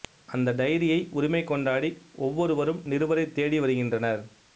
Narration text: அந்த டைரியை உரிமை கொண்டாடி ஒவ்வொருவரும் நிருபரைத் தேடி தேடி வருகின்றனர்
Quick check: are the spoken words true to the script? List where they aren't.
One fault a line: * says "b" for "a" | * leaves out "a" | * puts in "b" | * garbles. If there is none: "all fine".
* leaves out "தேடி"